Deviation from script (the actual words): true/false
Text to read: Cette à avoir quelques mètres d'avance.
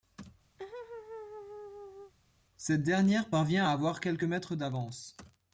true